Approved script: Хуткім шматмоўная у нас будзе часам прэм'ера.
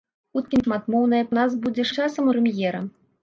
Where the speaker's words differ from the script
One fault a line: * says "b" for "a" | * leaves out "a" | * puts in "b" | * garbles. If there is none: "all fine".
all fine